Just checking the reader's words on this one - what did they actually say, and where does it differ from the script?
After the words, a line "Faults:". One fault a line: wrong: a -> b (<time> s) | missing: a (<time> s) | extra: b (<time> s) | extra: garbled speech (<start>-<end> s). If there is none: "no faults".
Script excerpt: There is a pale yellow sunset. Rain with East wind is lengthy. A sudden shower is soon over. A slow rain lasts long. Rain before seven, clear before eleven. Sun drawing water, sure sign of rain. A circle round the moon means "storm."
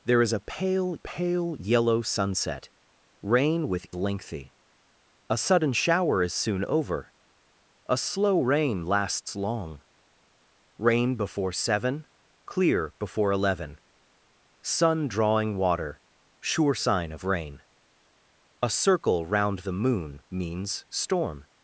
There is a pale pale yellow sunset. Rain with Lengthy. A sudden shower is soon over. A slow rain lasts long. Rain before seven, clear before eleven. Sun drawing water, sure sign of rain. A circle round the moon means "storm."
Faults:
extra: pale (1.0 s)
missing: East wind is (3.9 s)